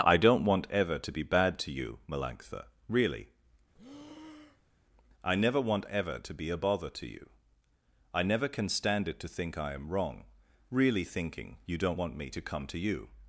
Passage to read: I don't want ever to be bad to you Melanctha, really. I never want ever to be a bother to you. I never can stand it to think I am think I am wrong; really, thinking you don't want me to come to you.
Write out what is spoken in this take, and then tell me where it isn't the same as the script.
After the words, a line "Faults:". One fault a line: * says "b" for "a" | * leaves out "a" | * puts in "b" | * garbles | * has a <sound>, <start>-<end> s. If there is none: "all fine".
I don't want ever to be bad to you Melanctha, really. I never want ever to be a bother to you. I never can stand it to think I am wrong; really, thinking you don't want me to come to you.
Faults:
* has a breath, 3.7-4.8 s
* leaves out "think I am"